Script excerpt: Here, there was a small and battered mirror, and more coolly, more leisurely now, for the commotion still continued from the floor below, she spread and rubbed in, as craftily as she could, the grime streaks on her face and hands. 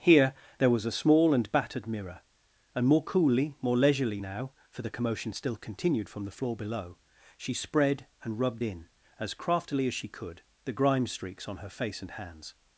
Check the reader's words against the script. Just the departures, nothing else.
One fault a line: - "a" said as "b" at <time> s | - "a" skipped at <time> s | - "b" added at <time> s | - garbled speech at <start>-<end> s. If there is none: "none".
none